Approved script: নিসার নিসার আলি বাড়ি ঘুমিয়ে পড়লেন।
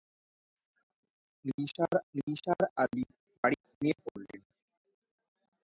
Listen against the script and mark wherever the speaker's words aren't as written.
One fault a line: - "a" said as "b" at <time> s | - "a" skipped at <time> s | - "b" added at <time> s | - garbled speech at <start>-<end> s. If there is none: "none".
none